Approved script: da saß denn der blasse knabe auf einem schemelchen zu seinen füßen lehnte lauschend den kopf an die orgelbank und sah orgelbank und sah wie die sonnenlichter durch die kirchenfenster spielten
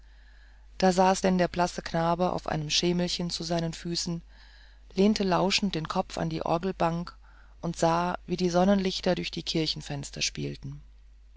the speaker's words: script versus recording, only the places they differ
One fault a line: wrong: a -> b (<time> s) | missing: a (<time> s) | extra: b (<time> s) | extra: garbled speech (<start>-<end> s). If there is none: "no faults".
missing: orgelbank und sah (8.2 s)